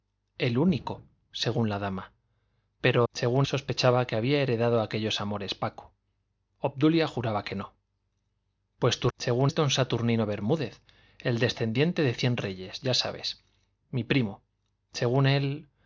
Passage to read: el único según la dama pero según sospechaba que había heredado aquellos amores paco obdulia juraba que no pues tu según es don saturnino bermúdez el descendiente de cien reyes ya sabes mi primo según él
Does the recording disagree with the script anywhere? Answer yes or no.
no